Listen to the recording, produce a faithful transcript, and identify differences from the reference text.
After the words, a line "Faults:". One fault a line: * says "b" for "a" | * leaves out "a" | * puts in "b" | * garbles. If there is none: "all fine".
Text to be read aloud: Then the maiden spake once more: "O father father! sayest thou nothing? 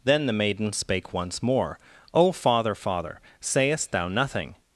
Then the maiden spake once more: "O father father! sayest thou nothing?
Faults:
all fine